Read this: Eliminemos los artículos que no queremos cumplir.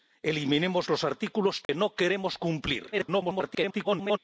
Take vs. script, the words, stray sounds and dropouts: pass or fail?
fail